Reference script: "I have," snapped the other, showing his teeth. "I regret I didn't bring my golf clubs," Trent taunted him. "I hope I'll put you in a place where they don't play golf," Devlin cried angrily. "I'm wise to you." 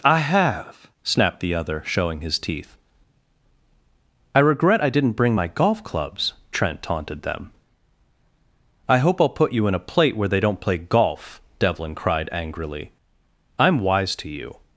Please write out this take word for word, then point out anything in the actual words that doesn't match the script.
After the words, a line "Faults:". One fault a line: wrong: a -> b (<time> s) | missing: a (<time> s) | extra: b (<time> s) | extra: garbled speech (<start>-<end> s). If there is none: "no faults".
"I have," snapped the other, showing his teeth. "I regret I didn't bring my golf clubs," Trent taunted them. "I hope I'll put you in a plate where they don't play golf," Devlin cried angrily. "I'm wise to you."
Faults:
wrong: him -> them (7.2 s)
wrong: place -> plate (9.8 s)